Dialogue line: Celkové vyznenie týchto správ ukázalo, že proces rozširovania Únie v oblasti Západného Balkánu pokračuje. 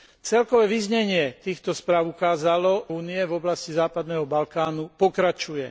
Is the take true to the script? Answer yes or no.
no